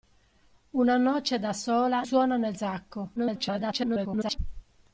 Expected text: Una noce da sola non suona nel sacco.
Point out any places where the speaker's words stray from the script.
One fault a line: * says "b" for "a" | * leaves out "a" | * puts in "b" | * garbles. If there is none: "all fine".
* leaves out "non"
* garbles